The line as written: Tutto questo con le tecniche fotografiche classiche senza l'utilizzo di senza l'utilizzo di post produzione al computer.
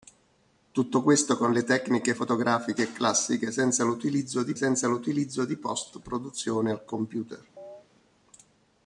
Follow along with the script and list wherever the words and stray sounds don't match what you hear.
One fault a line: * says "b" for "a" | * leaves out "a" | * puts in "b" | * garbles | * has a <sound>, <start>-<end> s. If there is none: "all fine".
* has a chirp, 7.6-7.9 s